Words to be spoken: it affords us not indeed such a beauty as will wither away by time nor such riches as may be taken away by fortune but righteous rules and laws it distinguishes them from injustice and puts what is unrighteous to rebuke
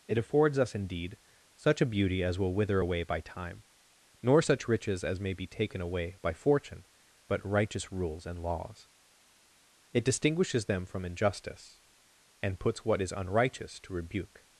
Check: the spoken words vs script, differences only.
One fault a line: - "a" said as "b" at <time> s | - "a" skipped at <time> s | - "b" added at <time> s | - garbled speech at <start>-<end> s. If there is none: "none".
- "not" skipped at 0.8 s